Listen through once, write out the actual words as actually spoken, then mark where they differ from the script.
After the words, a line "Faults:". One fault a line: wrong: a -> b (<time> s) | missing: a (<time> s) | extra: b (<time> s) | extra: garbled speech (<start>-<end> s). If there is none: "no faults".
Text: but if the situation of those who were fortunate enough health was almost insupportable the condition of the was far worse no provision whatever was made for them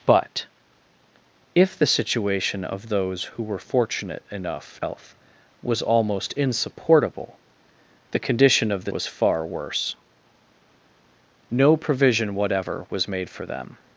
but if the situation of those who were fortunate enough health was almost insupportable the condition of the was far worse no provision whatever was made for them
Faults:
no faults